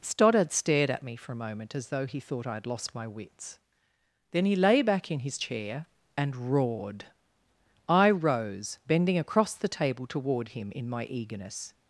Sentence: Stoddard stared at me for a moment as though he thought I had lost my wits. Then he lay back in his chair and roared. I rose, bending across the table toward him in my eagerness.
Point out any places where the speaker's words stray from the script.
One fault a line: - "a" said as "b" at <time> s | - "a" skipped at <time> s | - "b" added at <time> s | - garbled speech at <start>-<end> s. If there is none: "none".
none